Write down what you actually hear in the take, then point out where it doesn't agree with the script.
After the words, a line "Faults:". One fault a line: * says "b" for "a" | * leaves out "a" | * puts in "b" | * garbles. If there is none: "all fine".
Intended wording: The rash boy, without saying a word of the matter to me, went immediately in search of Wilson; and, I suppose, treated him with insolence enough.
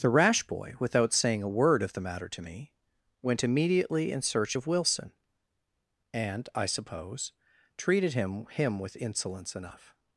The rash boy, without saying a word of the matter to me, went immediately in search of Wilson; and, I suppose, treated him him with insolence enough.
Faults:
* puts in "him"